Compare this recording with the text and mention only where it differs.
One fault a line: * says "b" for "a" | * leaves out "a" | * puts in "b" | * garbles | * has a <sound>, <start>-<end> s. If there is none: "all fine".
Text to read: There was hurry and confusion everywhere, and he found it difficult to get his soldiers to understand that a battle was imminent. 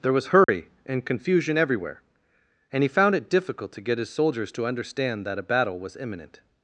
* has a dropout, 0.4-0.5 s